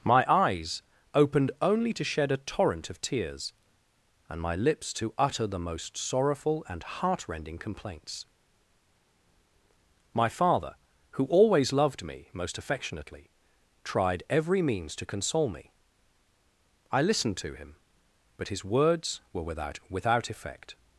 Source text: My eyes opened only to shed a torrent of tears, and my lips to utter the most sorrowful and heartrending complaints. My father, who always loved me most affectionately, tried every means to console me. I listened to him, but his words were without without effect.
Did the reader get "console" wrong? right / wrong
right